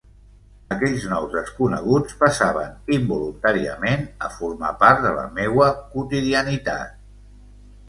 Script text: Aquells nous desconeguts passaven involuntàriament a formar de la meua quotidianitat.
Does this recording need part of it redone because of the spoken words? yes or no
yes